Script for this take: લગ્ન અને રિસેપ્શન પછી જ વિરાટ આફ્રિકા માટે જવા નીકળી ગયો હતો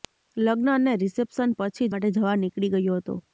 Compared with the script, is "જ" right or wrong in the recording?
wrong